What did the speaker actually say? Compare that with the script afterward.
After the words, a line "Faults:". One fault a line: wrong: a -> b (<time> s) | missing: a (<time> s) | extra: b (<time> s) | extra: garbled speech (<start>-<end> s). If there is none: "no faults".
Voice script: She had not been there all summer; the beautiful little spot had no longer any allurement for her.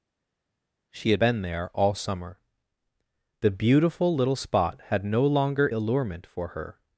She had been there all summer; the beautiful little spot had no longer allurement for her.
Faults:
missing: not (1.2 s)
missing: any (5.7 s)